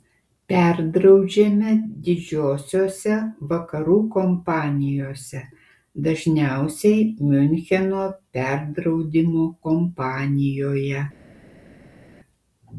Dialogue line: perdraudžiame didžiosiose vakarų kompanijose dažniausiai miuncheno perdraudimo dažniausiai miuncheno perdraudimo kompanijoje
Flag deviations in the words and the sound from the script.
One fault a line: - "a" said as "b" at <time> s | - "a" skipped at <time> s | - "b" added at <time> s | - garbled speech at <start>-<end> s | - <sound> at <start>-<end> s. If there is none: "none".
- "dažniausiai miuncheno perdraudimo" skipped at 9.5 s